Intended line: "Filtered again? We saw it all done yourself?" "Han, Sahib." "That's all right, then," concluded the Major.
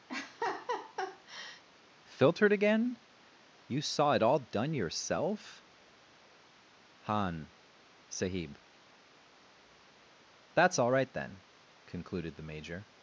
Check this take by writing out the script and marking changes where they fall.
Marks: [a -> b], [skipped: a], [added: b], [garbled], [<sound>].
[laugh] "Filtered again? [We -> You] saw it all done yourself?" "Han, Sahib." "That's all right, then," concluded the Major.